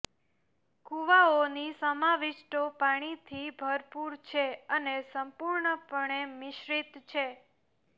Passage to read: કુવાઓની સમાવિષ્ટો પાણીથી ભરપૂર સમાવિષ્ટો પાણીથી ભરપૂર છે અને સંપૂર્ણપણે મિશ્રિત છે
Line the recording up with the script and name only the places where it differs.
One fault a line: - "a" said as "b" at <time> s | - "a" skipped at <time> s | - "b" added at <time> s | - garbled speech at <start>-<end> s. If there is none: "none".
- "સમાવિષ્ટો પાણીથી ભરપૂર" skipped at 4.2 s